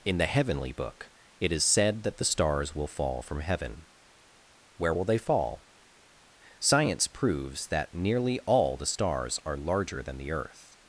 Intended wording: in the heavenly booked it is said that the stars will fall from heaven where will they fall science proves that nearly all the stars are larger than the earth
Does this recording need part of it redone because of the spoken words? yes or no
yes